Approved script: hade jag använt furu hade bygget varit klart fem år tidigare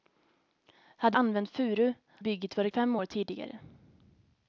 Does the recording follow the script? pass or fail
fail